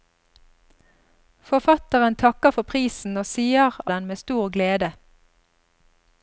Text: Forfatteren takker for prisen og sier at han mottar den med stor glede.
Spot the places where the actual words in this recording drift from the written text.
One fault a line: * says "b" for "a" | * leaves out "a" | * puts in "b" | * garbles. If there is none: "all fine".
* leaves out "at han mottar"